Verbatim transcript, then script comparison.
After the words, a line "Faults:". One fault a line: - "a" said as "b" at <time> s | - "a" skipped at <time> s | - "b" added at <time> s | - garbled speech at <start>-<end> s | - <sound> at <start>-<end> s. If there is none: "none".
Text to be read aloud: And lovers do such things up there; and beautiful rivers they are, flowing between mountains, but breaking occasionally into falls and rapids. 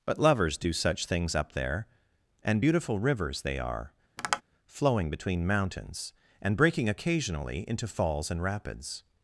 But lovers do such things up there; and beautiful rivers they are, flowing between mountains, and breaking occasionally into falls and rapids.
Faults:
- "And" said as "But" at 0.1 s
- tap at 4.2-4.4 s
- "but" said as "and" at 6.4 s